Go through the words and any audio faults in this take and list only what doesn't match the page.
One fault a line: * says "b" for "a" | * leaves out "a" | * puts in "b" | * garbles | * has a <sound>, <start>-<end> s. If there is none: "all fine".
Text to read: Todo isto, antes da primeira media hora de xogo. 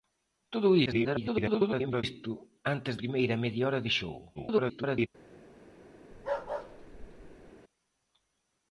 * garbles
* leaves out "da"
* garbles
* has a bark, 6.1-7.5 s